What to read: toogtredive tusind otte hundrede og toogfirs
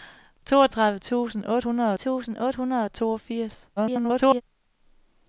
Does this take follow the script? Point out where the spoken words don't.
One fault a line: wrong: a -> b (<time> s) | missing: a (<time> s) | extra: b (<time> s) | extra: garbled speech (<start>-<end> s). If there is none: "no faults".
extra: tusind otte hundrede (1.9 s)
extra: garbled speech (3.8-4.4 s)